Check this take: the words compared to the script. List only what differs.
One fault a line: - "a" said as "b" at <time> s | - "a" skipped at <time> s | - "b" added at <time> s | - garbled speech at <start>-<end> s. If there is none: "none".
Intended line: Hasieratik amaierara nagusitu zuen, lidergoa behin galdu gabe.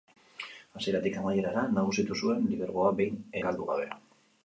none